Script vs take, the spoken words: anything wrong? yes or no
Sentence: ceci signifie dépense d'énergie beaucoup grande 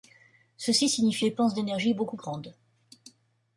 no